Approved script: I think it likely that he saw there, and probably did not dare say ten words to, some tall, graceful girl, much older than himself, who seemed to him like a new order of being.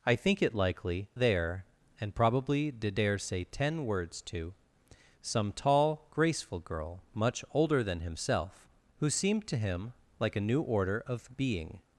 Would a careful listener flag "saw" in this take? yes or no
yes